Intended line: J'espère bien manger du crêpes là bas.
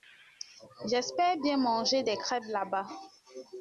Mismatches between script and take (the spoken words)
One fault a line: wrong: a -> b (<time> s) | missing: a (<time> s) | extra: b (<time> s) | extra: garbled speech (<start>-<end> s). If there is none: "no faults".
wrong: du -> des (2.0 s)